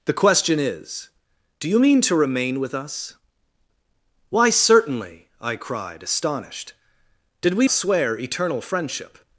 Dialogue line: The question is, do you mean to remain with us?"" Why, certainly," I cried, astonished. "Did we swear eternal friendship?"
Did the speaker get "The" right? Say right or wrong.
right